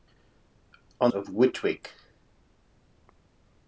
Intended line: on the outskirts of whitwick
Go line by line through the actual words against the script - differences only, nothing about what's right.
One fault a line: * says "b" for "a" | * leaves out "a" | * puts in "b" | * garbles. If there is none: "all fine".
* leaves out "the outskirts"